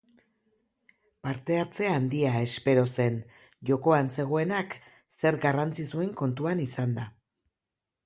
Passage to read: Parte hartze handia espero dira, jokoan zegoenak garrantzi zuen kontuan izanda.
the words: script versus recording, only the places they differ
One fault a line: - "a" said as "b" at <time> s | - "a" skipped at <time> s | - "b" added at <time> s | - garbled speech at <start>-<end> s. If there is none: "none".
- "dira" said as "zen" at 2.9 s
- "zer" added at 5.2 s